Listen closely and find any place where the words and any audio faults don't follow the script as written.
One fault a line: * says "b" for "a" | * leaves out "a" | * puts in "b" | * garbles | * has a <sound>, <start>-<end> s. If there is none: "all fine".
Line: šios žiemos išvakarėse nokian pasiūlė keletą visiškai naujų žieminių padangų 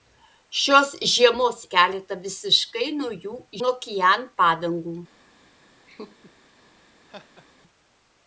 * leaves out "išvakarėse nokian pasiūlė"
* says "nokian" for "žieminių"
* has a laugh, 5.9-6.3 s
* has a laugh, 7.1-7.5 s